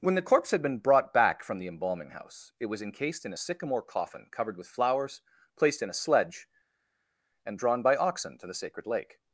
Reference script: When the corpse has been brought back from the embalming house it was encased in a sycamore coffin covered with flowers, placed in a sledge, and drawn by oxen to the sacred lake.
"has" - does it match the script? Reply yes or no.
no